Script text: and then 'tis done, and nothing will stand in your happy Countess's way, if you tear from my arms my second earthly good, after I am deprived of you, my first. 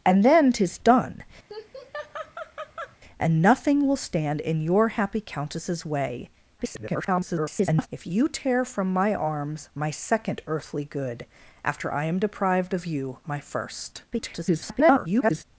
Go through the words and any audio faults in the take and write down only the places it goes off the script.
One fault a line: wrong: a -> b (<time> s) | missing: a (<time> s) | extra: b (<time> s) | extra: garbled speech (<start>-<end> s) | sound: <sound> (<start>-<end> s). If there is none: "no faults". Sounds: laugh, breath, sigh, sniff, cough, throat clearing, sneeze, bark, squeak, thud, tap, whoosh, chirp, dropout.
sound: laugh (1.5-3.0 s)
extra: garbled speech (6.6-7.9 s)
extra: garbled speech (14.1-15.4 s)